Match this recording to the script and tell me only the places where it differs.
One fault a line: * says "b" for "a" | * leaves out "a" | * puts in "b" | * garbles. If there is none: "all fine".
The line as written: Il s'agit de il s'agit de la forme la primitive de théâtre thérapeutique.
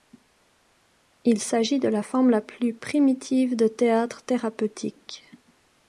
* leaves out "il s'agit de"
* puts in "plus"